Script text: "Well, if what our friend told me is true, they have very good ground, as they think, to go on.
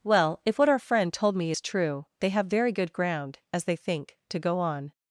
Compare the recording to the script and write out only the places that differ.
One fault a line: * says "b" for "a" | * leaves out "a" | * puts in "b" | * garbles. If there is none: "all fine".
all fine